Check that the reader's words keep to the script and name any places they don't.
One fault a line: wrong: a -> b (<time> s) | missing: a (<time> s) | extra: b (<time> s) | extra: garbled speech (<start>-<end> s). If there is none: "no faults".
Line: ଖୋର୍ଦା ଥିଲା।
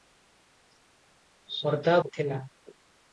no faults